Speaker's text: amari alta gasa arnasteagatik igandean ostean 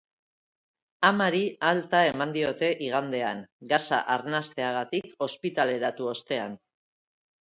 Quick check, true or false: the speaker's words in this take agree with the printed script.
false